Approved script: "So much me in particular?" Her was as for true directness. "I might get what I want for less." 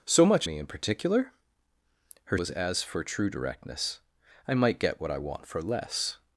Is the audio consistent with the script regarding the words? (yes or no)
yes